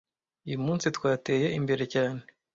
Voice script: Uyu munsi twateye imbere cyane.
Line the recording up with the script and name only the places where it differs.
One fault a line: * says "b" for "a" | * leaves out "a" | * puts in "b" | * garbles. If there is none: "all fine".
all fine